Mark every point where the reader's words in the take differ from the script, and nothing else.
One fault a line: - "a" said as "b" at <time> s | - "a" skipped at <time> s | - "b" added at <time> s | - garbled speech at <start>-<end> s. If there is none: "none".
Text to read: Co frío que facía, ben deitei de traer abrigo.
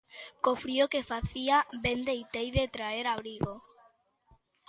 none